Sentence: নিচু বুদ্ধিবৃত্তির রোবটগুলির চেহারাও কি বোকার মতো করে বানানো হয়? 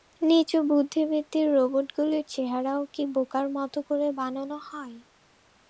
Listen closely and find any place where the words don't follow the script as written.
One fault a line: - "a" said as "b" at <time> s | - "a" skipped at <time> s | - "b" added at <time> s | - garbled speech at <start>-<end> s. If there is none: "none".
none